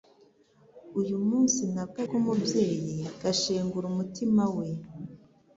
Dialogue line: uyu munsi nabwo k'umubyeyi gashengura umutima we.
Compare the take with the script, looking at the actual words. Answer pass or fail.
pass